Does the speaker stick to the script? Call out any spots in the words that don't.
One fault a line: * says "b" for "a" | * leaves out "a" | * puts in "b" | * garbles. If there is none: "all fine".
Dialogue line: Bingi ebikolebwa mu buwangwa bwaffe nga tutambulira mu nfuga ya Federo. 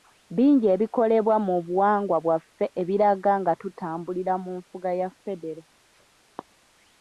* puts in "ebiraga"